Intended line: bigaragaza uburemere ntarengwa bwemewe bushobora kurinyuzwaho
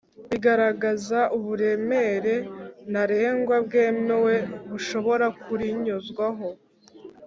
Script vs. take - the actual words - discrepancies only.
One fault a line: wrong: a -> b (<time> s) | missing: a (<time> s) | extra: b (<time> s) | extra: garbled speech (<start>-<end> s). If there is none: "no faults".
no faults